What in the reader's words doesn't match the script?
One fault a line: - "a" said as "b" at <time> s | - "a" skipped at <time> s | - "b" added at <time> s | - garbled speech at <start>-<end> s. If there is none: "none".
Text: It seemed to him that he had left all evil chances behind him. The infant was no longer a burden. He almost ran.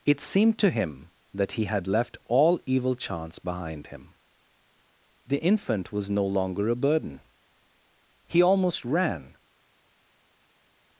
- "chances" said as "chance" at 2.9 s